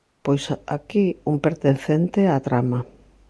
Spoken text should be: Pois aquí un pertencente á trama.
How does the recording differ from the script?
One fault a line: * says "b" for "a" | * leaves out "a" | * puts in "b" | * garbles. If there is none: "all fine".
all fine